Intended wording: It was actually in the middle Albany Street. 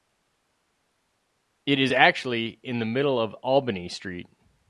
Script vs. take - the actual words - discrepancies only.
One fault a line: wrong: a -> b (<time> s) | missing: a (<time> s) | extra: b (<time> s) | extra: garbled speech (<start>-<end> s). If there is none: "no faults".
wrong: was -> is (1.8 s)
extra: of (3.2 s)